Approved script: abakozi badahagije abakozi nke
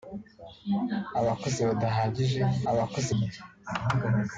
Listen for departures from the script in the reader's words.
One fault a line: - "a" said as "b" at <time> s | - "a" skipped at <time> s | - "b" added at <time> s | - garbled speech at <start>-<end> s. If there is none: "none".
none